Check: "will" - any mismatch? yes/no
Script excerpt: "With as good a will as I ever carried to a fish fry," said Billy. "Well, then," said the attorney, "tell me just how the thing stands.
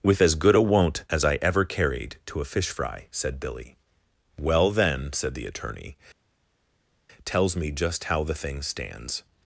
yes